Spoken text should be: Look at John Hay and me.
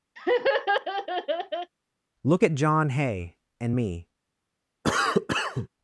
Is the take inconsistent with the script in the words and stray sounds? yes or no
yes